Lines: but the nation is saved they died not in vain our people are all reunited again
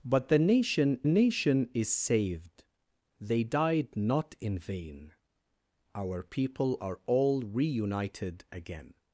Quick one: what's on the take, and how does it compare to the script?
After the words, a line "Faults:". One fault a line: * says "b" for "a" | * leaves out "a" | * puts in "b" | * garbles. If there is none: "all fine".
but the nation nation is saved they died not in vain our people are all reunited again
Faults:
* puts in "nation"